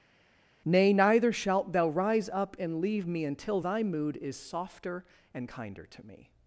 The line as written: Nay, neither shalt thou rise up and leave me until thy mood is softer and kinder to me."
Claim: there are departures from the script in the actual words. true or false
false